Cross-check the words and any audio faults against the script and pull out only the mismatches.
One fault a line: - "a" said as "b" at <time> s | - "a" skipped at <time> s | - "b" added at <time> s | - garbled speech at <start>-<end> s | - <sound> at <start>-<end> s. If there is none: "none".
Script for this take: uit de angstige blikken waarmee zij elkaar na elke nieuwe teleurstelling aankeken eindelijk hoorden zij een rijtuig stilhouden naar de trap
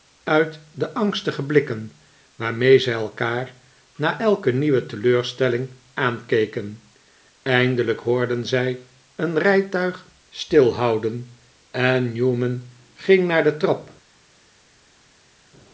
- "en newman ging" added at 11.7 s